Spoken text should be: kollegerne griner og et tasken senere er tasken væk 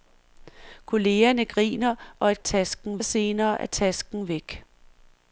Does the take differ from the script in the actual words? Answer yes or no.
no